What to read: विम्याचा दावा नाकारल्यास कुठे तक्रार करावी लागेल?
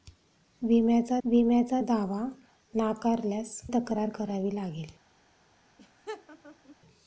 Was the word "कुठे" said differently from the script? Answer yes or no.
yes